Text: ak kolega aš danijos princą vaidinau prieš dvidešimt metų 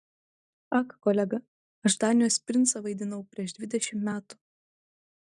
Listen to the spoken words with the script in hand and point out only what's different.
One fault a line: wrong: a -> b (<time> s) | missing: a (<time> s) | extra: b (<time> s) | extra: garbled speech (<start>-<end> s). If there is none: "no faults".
no faults